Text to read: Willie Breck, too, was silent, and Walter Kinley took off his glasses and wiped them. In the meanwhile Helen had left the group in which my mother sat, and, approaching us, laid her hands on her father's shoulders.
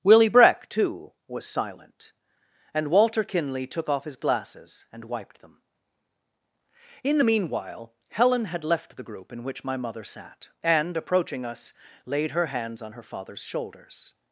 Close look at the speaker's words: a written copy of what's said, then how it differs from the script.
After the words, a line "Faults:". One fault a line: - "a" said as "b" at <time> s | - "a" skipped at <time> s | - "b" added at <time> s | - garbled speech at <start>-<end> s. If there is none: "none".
Willie Breck, too, was silent, and Walter Kinley took off his glasses and wiped them. In the meanwhile Helen had left the group in which my mother sat, and, approaching us, laid her hands on her father's shoulders.
Faults:
none